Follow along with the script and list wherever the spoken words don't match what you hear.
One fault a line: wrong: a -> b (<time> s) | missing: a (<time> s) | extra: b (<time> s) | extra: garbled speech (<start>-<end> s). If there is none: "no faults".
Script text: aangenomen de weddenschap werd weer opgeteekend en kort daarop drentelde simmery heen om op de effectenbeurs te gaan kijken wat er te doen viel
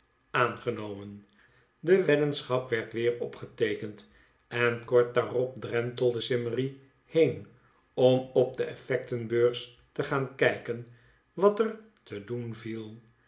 no faults